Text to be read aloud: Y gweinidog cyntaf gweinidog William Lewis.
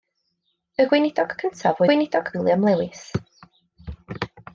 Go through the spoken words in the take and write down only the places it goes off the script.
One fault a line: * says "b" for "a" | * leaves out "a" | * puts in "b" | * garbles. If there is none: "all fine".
all fine